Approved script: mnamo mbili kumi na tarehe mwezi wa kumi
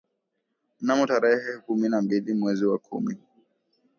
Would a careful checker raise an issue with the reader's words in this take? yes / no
yes